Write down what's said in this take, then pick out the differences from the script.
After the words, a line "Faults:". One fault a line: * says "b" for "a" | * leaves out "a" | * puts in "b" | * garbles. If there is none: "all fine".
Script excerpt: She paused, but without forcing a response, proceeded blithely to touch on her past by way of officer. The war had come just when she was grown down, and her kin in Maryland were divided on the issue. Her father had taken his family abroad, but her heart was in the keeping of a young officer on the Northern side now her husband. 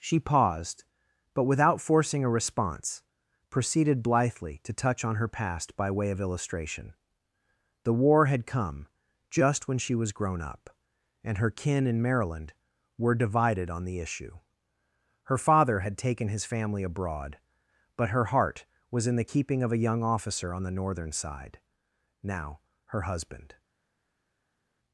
She paused, but without forcing a response, proceeded blithely to touch on her past by way of illustration. The war had come just when she was grown up, and her kin in Maryland were divided on the issue. Her father had taken his family abroad, but her heart was in the keeping of a young officer on the Northern side now her husband.
Faults:
* says "illustration" for "officer"
* says "up" for "down"